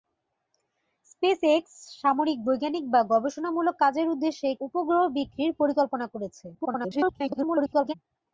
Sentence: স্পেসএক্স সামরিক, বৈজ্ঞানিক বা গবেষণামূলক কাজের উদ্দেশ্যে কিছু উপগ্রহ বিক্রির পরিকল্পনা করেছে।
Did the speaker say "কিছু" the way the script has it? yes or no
no